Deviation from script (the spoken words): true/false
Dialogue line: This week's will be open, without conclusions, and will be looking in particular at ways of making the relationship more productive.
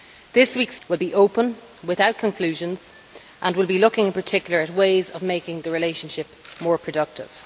false